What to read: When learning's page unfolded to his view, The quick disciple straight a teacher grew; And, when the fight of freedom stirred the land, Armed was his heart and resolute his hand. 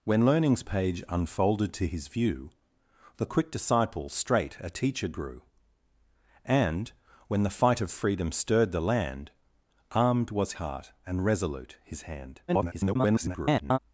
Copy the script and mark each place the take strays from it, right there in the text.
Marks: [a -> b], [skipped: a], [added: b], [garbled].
When learning's page unfolded to his view, The quick disciple straight a teacher grew; And, when the fight of freedom stirred the land, Armed was [skipped: his] heart and resolute his hand. [garbled]